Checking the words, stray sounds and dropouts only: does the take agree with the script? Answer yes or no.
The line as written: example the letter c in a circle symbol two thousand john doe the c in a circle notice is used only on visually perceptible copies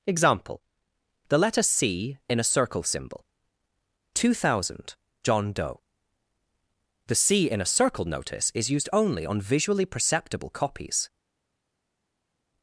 yes